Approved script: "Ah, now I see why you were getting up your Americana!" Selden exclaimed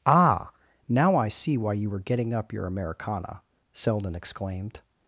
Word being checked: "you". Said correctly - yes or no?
yes